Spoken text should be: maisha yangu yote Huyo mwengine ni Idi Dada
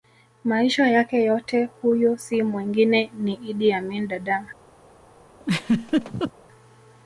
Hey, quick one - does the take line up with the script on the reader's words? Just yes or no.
no